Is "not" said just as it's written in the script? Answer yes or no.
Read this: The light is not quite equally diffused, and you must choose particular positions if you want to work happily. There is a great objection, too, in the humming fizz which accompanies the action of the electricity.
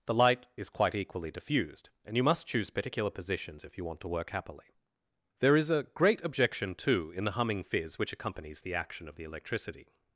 no